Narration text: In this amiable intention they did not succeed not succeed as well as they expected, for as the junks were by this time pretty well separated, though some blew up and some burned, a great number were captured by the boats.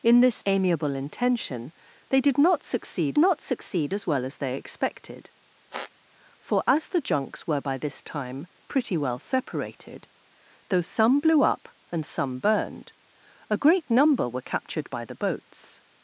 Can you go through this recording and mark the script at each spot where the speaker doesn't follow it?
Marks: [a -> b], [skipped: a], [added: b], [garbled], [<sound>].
In this amiable intention they did not succeed not succeed as well as they expected, [squeak] for as the junks were by this time pretty well separated, though some blew up and some burned, a great number were captured by the boats.